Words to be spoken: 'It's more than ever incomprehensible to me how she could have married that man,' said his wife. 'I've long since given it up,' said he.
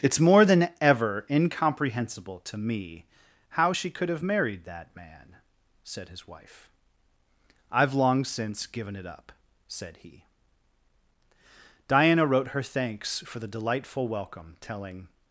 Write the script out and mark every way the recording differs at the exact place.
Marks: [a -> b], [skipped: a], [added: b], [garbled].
'It's more than ever incomprehensible to me how she could have married that man,' said his wife. 'I've long since given it up,' said he. [added: Diana wrote her thanks for the delightful welcome telling]